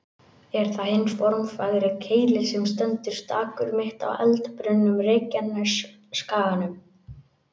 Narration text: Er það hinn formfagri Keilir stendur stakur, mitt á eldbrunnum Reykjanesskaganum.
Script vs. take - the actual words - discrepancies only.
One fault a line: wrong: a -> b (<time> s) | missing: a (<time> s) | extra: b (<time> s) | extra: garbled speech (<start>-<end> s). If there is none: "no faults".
extra: sem (2.5 s)